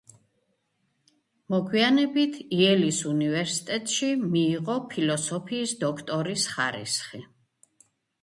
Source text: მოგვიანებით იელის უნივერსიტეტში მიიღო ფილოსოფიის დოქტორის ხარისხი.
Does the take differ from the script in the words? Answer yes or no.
no